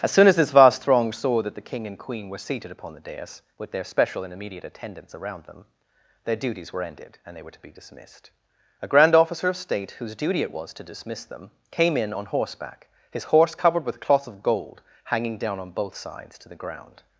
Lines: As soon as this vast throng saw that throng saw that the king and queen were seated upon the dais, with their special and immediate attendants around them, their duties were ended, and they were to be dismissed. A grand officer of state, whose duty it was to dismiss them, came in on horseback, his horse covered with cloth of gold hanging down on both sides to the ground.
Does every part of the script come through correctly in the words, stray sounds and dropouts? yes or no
no